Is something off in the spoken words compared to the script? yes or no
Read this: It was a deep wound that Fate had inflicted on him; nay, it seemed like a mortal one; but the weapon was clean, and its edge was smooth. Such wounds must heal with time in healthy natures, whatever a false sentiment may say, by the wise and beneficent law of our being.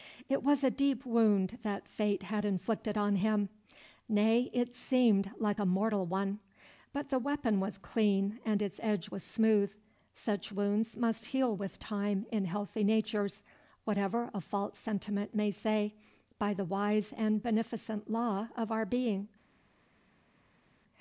no